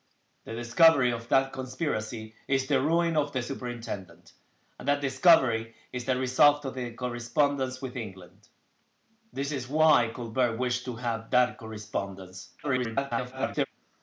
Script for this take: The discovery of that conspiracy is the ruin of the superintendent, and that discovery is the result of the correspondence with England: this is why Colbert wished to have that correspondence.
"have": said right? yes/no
yes